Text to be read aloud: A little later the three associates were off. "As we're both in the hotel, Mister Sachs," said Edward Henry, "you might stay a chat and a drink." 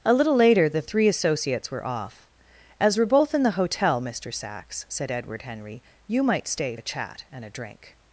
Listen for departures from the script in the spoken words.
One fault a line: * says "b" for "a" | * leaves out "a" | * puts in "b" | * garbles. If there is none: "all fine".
all fine